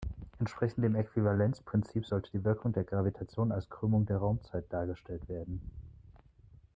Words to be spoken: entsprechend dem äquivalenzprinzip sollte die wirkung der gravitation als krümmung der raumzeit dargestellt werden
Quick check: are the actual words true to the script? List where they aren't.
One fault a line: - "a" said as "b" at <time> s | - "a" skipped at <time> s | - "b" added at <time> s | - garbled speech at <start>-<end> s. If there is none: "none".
none